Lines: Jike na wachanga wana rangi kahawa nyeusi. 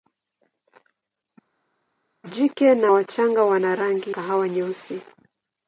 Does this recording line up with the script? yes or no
yes